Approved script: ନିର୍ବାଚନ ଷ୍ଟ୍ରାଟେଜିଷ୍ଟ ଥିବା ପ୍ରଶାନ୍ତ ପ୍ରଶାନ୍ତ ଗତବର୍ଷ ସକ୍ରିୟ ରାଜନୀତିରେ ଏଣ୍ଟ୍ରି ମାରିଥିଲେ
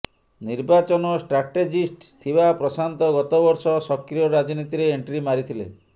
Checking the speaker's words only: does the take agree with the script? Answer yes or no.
no